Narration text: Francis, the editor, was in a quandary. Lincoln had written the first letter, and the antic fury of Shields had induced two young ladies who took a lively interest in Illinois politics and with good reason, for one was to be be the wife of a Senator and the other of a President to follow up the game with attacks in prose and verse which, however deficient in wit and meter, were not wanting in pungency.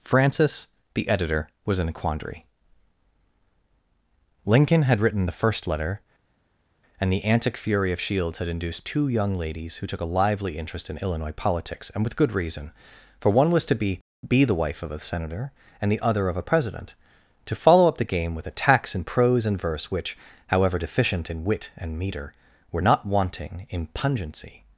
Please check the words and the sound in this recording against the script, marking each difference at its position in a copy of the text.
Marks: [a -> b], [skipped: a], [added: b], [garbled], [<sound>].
Francis, the editor, was in a quandary. Lincoln had written the first letter, and the antic fury of Shields had induced two young ladies who took a lively interest in Illinois politics and with good reason, for one was to be be the wife of a Senator and the other of a President to follow up the game with attacks in prose and verse which, however deficient in wit and meter, were not wanting in pungency.